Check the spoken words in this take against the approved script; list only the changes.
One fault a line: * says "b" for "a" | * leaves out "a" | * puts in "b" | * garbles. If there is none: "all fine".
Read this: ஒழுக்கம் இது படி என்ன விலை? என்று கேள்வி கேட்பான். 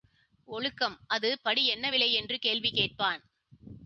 * says "அது" for "இது"